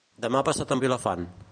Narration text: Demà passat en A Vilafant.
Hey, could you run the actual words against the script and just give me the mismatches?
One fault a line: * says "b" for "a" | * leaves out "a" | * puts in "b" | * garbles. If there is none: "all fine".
all fine